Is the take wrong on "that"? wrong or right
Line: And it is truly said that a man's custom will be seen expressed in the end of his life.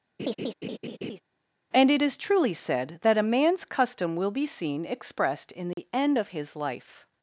right